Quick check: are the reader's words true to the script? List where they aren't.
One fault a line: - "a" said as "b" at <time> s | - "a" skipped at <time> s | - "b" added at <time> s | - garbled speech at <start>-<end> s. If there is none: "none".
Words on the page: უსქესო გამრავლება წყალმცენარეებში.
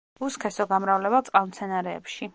none